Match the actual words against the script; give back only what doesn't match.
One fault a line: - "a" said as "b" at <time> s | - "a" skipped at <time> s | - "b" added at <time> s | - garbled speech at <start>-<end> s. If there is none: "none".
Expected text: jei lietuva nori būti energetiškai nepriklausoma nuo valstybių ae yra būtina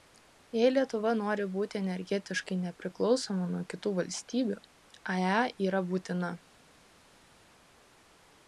- "kitų" added at 3.8 s